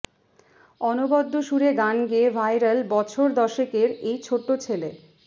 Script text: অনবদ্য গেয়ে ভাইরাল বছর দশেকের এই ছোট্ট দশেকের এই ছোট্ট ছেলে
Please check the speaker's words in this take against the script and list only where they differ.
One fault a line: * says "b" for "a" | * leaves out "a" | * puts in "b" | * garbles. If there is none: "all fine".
* puts in "সুরে গান"
* leaves out "দশেকের এই ছোট্ট"